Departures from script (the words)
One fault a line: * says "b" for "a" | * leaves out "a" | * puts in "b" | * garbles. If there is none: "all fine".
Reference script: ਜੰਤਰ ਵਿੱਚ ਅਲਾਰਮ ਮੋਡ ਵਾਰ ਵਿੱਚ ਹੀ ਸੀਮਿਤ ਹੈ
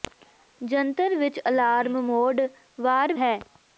* leaves out "ਵਿੱਚ ਹੀ ਸੀਮਿਤ"